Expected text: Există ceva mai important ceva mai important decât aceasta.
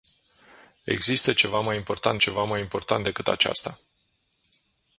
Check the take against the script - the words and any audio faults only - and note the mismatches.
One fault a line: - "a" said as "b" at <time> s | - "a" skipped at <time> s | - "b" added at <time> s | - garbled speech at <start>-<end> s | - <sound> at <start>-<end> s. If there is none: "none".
none